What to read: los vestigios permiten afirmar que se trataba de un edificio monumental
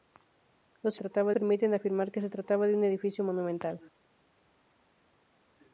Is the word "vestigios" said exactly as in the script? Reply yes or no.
no